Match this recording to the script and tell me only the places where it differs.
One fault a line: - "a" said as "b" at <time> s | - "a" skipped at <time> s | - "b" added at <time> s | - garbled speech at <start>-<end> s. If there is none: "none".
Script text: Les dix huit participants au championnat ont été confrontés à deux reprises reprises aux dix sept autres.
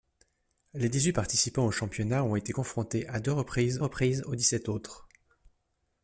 none